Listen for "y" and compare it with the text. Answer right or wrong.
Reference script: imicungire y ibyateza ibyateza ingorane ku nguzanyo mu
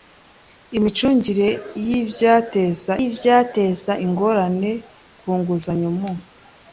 right